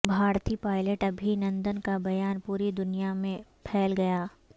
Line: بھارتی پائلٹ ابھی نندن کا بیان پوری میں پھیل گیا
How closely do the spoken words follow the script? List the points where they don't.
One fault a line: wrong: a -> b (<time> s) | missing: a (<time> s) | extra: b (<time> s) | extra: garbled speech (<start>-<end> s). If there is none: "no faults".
extra: دنیا (2.7 s)